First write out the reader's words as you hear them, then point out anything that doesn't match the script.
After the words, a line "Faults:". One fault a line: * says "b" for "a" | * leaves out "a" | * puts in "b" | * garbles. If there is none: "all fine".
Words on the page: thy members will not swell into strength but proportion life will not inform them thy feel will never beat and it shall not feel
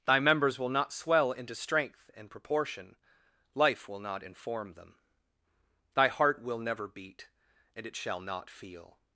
thy members will not swell into strength and proportion life will not inform them thy heart will never beat and it shall not feel
Faults:
* says "and" for "but"
* says "heart" for "feel"